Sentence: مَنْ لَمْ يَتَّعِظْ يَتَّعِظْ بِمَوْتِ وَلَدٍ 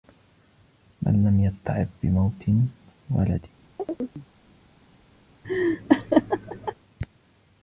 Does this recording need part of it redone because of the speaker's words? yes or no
yes